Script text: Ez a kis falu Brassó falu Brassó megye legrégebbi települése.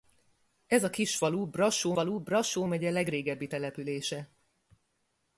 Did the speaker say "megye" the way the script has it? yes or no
yes